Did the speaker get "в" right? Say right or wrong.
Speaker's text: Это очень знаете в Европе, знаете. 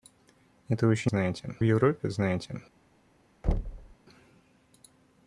right